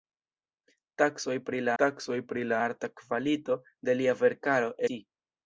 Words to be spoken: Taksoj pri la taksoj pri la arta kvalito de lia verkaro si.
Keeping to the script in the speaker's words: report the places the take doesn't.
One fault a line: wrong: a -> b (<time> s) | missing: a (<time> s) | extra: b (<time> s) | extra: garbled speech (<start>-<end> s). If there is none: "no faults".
no faults